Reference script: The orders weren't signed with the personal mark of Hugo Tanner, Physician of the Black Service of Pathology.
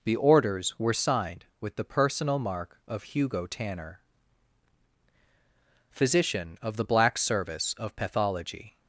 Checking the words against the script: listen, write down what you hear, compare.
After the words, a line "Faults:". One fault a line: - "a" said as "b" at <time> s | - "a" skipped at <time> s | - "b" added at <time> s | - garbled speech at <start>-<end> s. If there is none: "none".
The orders were signed with the personal mark of Hugo Tanner, Physician of the Black Service of Pathology.
Faults:
- "weren't" said as "were" at 0.8 s